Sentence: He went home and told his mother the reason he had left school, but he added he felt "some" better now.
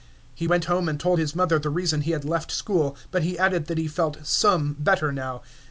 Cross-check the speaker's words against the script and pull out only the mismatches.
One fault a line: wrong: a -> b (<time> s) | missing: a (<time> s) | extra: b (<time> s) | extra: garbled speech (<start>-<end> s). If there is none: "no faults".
extra: that (3.7 s)